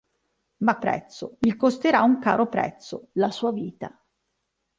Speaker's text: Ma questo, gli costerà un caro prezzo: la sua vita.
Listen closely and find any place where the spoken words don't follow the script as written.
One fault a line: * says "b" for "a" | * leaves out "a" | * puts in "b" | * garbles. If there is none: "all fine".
* says "prezzo" for "questo"